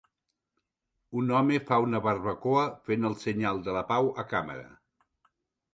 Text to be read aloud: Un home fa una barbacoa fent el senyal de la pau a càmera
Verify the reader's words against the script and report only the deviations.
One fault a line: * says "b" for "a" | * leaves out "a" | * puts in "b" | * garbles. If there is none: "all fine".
all fine